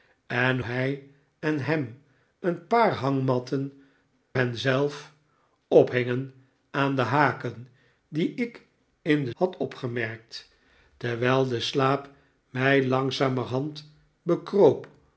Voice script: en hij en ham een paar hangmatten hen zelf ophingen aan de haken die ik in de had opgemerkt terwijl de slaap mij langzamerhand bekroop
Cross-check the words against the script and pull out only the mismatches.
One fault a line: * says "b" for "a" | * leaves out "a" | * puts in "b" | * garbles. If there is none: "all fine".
all fine